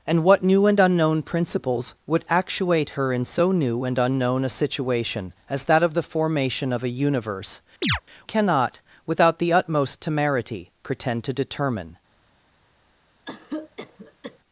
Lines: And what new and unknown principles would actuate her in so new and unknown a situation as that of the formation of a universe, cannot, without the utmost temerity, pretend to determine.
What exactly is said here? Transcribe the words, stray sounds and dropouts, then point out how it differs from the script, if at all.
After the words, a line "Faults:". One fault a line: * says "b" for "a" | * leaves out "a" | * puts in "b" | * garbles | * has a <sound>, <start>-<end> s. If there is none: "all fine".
And what new and unknown principles would actuate her in so new and unknown a situation as that of the formation of a universe, cannot, without the utmost temerity, pretend to determine.
Faults:
* has a chirp, 7.8-8.0 s
* has a cough, 13.2-14.4 s